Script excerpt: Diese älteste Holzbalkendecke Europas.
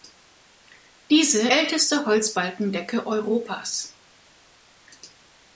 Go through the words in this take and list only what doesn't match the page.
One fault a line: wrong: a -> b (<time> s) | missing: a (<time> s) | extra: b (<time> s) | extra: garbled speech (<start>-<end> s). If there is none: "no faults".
no faults